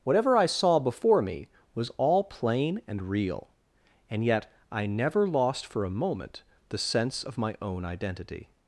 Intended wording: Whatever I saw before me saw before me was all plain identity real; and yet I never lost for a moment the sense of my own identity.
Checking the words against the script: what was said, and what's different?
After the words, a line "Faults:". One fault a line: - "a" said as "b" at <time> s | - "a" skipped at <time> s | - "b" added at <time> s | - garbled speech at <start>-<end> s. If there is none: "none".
Whatever I saw before me was all plain and real; and yet I never lost for a moment the sense of my own identity.
Faults:
- "saw before me" skipped at 1.5 s
- "identity" said as "and" at 2.9 s